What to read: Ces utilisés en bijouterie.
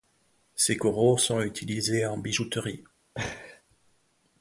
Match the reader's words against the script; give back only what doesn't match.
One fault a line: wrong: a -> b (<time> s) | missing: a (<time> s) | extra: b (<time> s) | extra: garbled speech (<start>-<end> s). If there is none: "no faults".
extra: coraux sont (0.8 s)